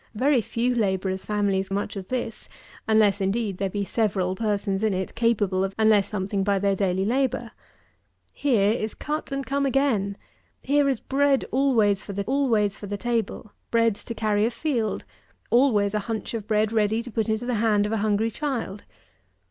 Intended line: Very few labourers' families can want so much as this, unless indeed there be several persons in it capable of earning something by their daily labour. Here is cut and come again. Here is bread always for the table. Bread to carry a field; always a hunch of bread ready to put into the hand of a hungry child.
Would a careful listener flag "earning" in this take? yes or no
yes